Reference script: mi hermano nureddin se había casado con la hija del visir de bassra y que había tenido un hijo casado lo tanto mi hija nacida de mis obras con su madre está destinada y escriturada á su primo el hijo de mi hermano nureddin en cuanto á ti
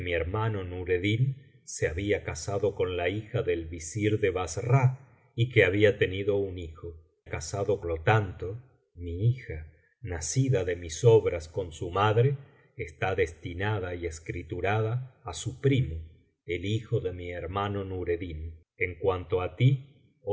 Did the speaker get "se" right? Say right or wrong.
right